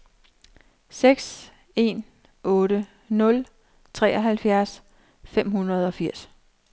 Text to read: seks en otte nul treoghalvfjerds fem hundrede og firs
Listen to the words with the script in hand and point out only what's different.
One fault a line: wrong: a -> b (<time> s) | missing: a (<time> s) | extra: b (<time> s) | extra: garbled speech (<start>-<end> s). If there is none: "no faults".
no faults